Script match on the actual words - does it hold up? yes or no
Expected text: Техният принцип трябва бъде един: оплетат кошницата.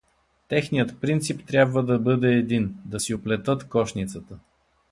no